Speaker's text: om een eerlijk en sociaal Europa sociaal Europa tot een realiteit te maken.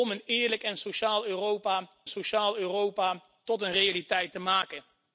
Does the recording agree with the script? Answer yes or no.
yes